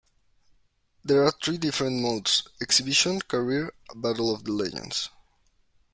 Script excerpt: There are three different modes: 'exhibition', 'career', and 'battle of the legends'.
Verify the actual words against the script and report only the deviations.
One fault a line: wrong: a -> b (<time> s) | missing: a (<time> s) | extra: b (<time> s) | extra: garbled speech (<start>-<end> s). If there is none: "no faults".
missing: and (3.7 s)